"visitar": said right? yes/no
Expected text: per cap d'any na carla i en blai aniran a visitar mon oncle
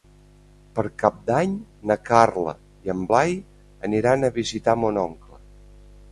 yes